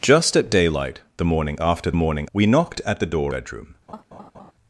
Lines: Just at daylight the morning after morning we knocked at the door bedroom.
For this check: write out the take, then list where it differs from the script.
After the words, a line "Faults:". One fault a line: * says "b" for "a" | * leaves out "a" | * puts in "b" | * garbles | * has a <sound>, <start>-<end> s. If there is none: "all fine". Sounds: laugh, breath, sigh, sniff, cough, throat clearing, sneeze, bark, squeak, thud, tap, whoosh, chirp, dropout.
Just at daylight the morning after morning we knocked at the door bedroom.
Faults:
* has a laugh, 3.9-4.5 s